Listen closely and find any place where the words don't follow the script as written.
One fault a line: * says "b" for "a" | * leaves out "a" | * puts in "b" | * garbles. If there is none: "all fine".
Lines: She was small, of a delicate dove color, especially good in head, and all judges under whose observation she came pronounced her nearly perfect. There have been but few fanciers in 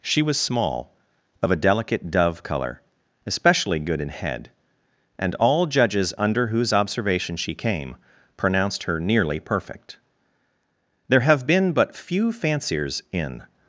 all fine